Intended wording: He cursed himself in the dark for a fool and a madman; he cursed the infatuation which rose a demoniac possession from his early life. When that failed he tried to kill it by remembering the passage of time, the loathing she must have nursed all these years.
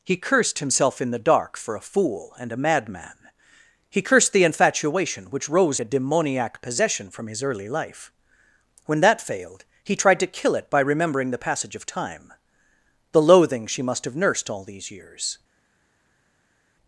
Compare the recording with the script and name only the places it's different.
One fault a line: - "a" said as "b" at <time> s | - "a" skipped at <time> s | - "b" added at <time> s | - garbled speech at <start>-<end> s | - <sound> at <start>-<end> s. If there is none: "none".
none